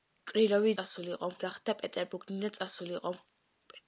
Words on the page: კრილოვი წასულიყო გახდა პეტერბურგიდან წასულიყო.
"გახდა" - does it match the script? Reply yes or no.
yes